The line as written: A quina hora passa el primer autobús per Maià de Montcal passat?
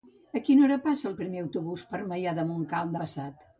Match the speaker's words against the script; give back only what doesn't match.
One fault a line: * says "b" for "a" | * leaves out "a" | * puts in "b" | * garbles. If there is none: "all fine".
all fine